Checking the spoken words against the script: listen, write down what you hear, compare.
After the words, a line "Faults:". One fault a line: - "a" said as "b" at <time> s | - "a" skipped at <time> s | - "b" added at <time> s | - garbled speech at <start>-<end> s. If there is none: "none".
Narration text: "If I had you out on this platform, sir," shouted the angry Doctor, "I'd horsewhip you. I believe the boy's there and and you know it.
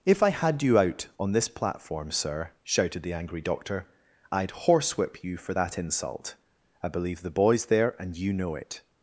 "If I had you out on this platform, sir," shouted the angry Doctor, "I'd horsewhip you for that insult. I believe the boy's there and you know it.
Faults:
- "for that insult" added at 5.4 s
- "and" skipped at 8.1 s